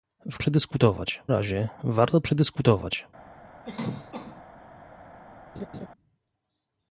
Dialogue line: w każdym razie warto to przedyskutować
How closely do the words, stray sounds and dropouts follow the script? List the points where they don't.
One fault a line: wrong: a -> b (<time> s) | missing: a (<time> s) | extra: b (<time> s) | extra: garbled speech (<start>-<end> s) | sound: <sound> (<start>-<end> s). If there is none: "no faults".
wrong: każdym -> przedyskutować (0.4 s)
missing: to (2.2 s)
sound: cough (3.6-4.4 s)
sound: laugh (5.6-5.9 s)